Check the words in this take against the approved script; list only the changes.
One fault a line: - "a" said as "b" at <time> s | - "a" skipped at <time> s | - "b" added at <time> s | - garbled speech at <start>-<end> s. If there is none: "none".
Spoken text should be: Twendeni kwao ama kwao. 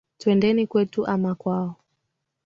- "kwao" said as "kwetu" at 0.7 s